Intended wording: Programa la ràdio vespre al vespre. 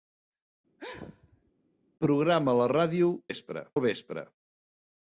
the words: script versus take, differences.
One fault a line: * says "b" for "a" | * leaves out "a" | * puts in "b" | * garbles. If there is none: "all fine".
all fine